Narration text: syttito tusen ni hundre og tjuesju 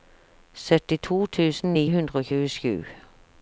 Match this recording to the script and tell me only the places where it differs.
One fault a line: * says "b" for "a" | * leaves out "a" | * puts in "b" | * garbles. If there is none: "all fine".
all fine